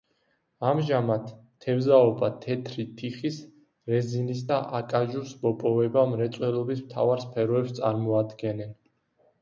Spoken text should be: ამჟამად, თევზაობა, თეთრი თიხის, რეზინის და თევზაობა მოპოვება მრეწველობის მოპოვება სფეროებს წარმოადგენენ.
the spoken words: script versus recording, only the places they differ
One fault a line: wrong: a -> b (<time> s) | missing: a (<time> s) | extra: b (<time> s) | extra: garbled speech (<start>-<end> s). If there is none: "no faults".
wrong: თევზაობა -> აკაჟუს (4.8 s)
wrong: მოპოვება -> მთავარ (6.9 s)